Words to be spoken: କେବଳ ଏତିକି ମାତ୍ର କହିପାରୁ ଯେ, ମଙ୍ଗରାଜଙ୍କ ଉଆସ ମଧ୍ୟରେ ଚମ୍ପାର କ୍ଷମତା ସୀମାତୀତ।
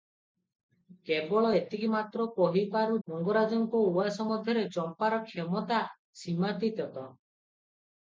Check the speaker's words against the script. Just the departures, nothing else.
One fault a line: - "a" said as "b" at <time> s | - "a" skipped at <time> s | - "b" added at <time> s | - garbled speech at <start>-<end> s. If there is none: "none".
- "ଯେ" skipped at 3.0 s